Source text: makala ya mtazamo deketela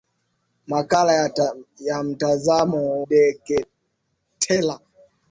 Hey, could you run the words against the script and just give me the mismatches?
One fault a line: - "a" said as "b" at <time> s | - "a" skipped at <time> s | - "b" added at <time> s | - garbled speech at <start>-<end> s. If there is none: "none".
none